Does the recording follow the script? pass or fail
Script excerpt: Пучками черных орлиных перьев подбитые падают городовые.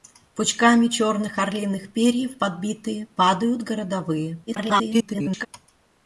fail